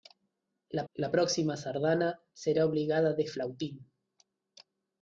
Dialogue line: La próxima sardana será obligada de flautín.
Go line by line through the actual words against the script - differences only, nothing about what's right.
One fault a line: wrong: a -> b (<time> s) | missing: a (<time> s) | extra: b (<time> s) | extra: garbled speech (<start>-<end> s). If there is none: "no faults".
extra: la (0.9 s)